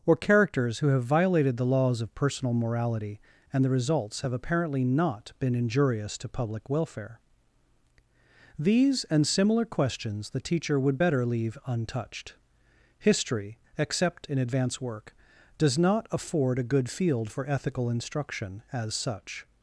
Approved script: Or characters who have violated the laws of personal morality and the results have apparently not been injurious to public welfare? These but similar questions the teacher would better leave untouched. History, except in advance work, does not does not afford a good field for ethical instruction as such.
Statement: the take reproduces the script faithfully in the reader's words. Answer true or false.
false